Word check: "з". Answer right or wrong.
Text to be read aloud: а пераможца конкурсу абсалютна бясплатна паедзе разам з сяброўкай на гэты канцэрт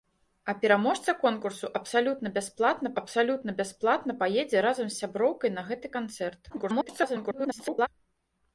right